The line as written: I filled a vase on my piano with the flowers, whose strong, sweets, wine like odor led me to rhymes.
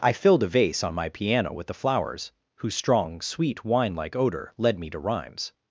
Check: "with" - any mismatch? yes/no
no